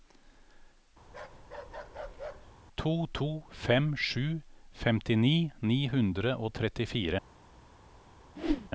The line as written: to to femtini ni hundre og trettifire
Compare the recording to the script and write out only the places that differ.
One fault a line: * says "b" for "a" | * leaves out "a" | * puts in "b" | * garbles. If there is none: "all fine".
* puts in "fem sju"